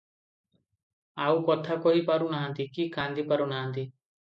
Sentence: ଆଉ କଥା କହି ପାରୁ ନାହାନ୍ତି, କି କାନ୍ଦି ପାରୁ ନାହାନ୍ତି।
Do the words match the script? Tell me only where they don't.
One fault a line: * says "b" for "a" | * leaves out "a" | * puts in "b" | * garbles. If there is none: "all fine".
all fine